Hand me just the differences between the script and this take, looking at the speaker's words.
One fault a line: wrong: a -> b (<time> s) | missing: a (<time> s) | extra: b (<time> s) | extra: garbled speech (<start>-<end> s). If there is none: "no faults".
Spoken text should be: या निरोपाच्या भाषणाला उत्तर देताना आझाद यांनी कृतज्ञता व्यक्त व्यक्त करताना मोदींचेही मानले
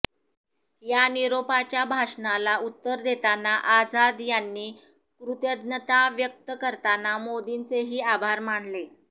missing: व्यक्त (6.5 s)
extra: आभार (8.1 s)